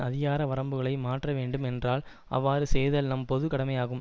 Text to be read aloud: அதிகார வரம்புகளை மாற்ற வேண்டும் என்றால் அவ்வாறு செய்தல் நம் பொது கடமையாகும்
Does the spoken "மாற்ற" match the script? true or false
true